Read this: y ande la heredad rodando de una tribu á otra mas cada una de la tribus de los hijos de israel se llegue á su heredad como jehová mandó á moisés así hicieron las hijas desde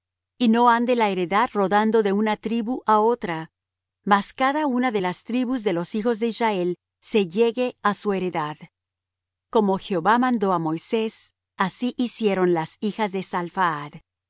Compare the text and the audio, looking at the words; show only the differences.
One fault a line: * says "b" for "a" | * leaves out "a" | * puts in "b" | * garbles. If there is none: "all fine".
* puts in "no"
* says "las" for "la"
* says "de" for "desde"